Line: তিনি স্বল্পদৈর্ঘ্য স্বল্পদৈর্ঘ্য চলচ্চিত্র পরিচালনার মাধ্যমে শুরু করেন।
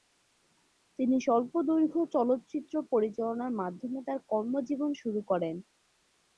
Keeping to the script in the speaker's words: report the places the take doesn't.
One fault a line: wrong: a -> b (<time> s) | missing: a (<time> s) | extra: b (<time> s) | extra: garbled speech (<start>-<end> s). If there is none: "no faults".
missing: স্বল্পদৈর্ঘ্য (2.0 s)
extra: তার কর্মজীবন (4.1 s)